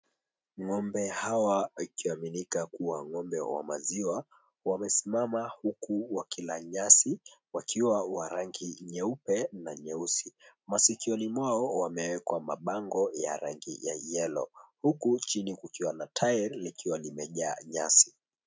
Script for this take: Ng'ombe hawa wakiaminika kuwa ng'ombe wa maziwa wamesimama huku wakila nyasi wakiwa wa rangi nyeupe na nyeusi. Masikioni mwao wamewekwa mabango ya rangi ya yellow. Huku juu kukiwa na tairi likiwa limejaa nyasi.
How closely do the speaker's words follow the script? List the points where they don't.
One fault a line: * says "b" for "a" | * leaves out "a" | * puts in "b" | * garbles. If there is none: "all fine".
* says "chini" for "juu"